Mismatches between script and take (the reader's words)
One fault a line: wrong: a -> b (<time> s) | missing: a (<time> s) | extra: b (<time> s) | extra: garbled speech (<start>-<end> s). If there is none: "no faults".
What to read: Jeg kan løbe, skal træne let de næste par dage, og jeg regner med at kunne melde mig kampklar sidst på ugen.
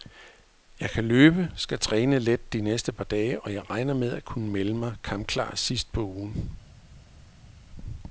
no faults